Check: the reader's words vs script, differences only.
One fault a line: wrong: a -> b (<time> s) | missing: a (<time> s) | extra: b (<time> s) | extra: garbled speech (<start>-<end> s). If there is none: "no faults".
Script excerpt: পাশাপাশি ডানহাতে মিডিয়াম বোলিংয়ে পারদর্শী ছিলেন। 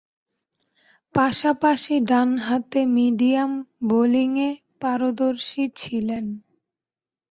no faults